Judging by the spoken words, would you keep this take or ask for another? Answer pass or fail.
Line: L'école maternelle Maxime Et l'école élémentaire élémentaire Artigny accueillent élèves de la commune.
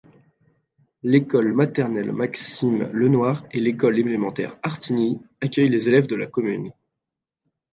fail